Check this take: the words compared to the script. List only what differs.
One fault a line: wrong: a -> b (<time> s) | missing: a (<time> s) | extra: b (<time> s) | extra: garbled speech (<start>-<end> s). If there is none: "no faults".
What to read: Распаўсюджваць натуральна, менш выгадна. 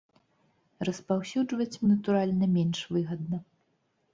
no faults